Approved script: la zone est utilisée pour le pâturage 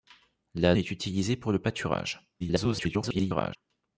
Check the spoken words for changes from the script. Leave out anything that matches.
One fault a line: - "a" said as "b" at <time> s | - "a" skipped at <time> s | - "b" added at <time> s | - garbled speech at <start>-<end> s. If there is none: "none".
- "zone" skipped at 0.8 s
- garbled speech at 2.4-3.6 s